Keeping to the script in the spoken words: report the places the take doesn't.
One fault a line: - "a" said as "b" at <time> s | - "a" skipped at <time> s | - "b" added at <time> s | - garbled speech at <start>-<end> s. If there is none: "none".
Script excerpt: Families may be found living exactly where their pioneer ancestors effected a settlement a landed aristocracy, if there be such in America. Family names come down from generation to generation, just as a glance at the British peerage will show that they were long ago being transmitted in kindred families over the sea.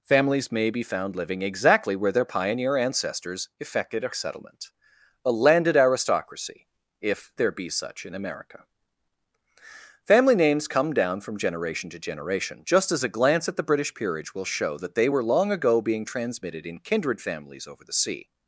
none